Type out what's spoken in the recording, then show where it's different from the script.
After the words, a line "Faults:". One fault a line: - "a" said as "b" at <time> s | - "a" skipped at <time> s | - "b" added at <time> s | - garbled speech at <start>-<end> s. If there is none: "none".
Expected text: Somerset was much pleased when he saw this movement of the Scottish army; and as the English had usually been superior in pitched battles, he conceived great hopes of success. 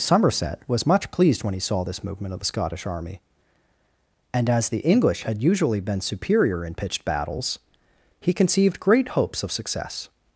Somerset was much pleased when he saw this movement of the Scottish army; and as the English had usually been superior in pitched battles, he conceived great hopes of success.
Faults:
none